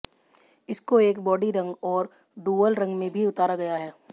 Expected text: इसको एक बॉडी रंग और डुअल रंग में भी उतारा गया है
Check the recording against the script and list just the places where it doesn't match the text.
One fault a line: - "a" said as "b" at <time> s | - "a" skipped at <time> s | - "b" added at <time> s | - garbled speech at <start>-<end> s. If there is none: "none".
none